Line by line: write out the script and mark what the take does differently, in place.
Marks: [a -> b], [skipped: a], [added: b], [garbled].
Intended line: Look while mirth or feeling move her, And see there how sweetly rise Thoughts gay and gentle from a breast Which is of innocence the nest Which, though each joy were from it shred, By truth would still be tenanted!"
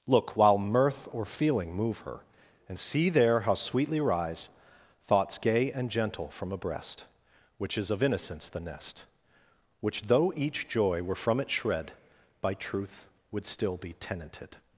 Look while mirth or feeling move her, And see there how sweetly rise Thoughts gay and gentle from a breast Which is of innocence the nest Which, though each joy were from it shred, By truth would still be tenanted!"